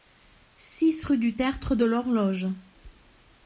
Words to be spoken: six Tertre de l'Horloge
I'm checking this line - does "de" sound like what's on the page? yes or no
yes